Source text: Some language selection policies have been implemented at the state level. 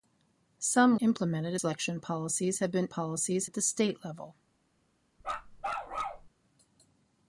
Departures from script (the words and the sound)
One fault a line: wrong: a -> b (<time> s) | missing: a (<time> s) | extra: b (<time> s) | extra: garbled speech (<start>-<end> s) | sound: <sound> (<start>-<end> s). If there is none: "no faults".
wrong: language -> implemented (1.0 s)
wrong: implemented -> policies (2.9 s)
sound: bark (5.2-6.3 s)